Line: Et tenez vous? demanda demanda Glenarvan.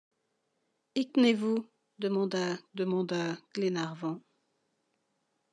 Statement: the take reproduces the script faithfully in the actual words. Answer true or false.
true